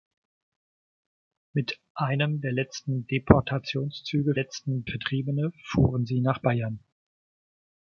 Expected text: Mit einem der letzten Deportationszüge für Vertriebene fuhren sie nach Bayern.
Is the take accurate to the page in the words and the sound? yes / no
no